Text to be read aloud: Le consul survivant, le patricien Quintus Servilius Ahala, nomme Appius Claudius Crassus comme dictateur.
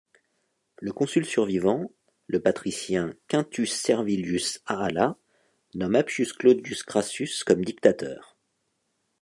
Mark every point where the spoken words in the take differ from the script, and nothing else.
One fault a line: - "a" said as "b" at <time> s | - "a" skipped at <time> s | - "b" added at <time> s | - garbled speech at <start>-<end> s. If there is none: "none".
none